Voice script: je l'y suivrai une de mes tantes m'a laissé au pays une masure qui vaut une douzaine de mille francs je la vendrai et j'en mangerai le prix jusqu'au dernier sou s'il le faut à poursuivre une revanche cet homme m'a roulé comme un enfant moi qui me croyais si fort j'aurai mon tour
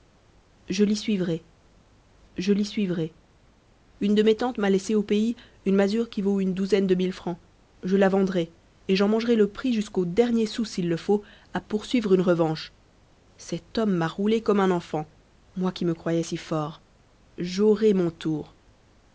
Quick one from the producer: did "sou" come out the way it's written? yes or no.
yes